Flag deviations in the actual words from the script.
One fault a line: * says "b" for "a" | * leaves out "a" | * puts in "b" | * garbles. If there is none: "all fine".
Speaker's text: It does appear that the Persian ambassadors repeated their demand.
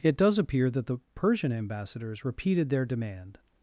all fine